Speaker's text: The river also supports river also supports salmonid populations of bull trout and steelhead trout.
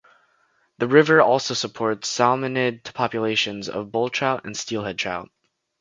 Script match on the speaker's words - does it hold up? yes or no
no